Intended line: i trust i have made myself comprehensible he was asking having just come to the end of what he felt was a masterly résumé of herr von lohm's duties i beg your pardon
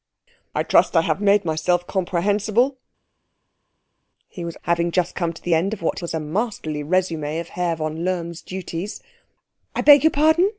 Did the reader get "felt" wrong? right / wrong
wrong